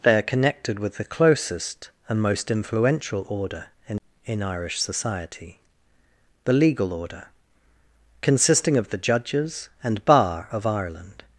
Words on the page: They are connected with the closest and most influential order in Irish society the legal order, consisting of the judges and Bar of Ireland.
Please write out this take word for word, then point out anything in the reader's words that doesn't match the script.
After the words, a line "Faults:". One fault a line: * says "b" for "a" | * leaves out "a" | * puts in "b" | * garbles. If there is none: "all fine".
They are connected with the closest and most influential order in in Irish society the legal order, consisting of the judges and Bar of Ireland.
Faults:
* puts in "in"